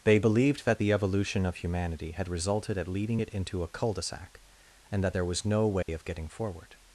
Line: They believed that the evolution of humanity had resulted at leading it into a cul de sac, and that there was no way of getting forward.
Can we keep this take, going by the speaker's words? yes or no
yes